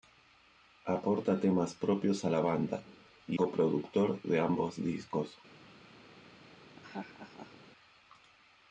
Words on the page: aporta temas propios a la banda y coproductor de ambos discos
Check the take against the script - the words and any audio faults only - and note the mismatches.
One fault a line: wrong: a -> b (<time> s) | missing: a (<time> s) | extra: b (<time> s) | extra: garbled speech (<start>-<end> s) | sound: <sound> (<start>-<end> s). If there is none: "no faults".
sound: laugh (6.7-7.6 s)